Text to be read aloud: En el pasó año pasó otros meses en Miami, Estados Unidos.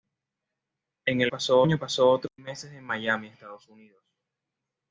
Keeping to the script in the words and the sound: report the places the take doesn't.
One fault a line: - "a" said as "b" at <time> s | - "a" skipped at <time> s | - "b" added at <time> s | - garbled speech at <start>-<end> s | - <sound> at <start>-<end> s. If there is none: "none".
none